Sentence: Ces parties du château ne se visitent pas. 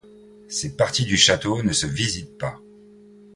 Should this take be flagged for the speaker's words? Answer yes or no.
no